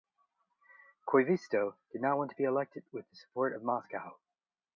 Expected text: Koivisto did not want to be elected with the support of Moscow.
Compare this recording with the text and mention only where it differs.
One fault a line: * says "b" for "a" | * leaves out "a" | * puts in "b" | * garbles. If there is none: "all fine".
all fine